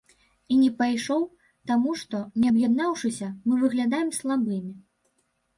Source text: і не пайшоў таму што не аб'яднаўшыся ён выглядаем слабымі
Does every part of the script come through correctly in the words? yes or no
no